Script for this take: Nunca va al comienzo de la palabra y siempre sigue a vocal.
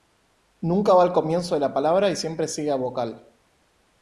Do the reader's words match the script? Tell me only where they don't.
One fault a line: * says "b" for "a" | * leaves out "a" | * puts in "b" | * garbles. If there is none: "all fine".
all fine